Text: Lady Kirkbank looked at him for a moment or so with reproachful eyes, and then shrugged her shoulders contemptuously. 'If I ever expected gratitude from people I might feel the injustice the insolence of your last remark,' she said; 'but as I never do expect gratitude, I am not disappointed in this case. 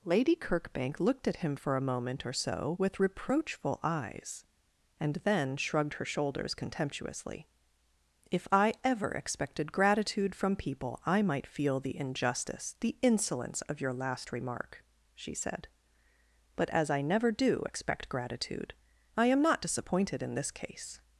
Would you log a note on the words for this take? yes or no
no